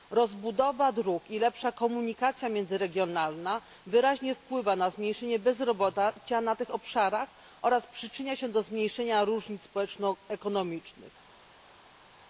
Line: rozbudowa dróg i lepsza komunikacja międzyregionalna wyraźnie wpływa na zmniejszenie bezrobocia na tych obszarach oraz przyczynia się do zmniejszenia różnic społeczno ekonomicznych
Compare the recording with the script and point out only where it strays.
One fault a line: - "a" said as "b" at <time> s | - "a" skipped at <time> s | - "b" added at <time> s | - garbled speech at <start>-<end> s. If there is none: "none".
none